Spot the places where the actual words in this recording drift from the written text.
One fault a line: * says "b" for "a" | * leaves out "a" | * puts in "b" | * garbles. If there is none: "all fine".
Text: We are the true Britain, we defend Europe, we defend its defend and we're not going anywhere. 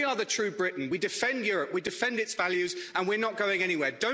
* says "values" for "defend"